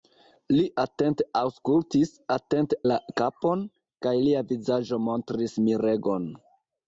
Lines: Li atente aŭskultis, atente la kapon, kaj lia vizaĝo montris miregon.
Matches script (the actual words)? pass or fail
pass